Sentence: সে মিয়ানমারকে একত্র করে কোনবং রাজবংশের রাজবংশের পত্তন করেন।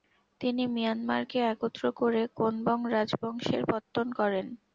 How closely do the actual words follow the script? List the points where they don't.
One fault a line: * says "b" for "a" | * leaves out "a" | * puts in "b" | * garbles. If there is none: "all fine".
* says "তিনি" for "সে"
* leaves out "রাজবংশের"